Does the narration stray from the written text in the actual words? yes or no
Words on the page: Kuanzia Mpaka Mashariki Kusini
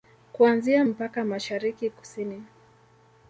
no